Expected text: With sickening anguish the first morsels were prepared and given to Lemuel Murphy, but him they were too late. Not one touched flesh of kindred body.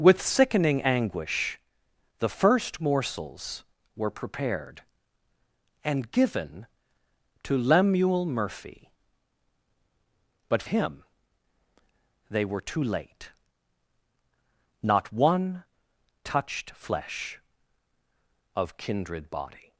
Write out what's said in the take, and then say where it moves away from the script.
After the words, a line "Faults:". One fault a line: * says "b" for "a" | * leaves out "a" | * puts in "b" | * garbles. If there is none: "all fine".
With sickening anguish the first morsels were prepared and given to Lemuel Murphy, but him they were too late. Not one touched flesh of kindred body.
Faults:
all fine